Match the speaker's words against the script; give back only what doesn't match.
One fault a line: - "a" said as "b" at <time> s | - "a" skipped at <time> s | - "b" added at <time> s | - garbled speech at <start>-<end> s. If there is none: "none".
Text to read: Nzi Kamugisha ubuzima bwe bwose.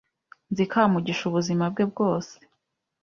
none